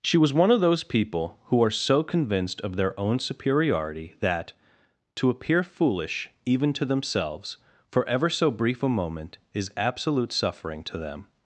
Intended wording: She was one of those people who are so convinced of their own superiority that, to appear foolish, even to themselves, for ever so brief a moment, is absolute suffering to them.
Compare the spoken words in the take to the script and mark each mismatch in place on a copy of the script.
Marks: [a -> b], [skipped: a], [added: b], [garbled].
She was one of those people who are so convinced of their own superiority that, to appear foolish, even to themselves, for ever so brief a moment, is absolute suffering to them.